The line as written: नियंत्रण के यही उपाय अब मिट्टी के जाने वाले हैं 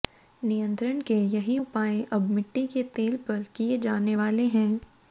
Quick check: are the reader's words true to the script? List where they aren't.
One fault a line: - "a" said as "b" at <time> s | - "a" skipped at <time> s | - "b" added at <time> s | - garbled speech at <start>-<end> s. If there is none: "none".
- "तेल पर किए" added at 2.9 s